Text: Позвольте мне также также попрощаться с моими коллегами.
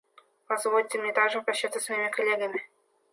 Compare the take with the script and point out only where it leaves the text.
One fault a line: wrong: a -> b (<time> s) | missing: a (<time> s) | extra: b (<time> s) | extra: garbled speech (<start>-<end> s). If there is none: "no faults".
missing: также (1.4 s)